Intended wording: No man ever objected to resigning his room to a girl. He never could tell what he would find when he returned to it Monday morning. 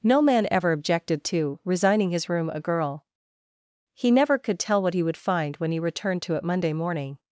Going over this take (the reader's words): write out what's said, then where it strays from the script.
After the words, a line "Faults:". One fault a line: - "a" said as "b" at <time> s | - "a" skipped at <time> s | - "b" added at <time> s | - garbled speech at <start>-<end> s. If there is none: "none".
No man ever objected to resigning his room a girl. He never could tell what he would find when he returned to it Monday morning.
Faults:
- "to" skipped at 2.5 s